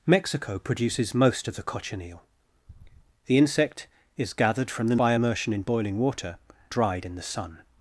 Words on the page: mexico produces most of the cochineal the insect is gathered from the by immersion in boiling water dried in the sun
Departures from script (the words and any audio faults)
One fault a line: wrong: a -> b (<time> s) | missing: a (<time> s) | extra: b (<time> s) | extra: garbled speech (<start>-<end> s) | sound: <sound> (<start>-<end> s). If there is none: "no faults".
no faults